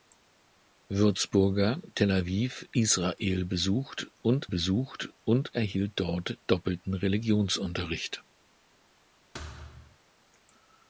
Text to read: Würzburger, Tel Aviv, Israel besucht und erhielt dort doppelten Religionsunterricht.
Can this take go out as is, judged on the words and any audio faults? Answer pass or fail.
fail